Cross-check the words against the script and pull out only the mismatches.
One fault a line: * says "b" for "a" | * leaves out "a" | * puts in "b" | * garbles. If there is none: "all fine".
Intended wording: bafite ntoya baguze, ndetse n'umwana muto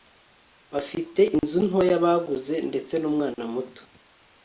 * puts in "inzu"